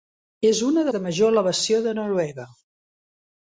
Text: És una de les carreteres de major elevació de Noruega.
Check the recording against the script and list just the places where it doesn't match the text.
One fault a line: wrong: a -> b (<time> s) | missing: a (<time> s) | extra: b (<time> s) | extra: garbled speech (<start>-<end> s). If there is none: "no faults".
missing: les carreteres (0.9 s)